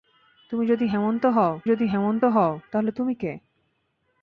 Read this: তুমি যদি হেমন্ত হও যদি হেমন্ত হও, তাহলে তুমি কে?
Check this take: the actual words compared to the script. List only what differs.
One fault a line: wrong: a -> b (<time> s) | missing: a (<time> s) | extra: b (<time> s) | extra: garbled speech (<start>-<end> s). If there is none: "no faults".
no faults